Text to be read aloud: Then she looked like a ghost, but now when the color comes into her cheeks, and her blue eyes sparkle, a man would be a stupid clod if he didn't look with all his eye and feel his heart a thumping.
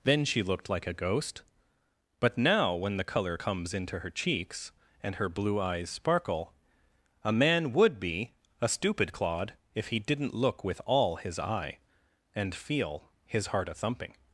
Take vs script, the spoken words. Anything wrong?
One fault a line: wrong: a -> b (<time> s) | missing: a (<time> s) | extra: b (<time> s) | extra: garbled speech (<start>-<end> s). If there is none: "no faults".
no faults